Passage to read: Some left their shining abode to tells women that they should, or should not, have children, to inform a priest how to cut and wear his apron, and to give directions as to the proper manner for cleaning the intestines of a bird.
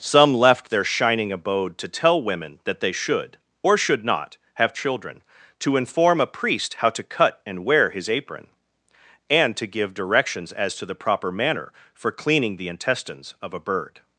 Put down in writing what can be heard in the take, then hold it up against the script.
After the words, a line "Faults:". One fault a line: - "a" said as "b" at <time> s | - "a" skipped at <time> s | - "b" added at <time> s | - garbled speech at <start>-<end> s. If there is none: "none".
Some left their shining abode to tell women that they should, or should not, have children, to inform a priest how to cut and wear his apron, and to give directions as to the proper manner for cleaning the intestines of a bird.
Faults:
- "tells" said as "tell" at 1.9 s